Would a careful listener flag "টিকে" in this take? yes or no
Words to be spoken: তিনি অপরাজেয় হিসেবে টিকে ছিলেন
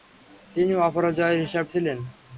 yes